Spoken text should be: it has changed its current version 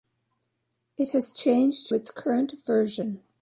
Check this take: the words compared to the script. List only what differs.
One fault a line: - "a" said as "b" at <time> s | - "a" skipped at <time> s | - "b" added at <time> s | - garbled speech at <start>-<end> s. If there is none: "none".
none